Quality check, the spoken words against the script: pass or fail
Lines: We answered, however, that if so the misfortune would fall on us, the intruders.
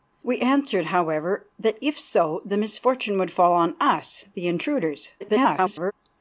fail